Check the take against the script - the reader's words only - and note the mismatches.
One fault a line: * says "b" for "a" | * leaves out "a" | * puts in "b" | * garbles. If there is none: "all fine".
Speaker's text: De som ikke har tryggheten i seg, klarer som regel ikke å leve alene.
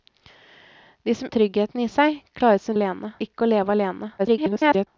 * leaves out "ikke"
* says "alene" for "regel"
* garbles